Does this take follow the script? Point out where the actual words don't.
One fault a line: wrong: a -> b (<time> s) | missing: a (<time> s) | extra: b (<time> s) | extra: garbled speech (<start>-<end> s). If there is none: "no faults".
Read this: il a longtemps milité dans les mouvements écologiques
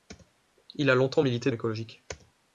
missing: dans les mouvements (1.5 s)